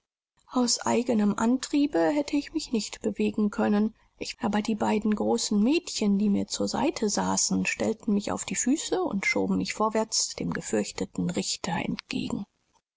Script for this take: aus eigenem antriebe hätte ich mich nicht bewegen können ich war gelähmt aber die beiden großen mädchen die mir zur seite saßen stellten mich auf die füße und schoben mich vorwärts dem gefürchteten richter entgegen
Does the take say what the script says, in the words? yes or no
no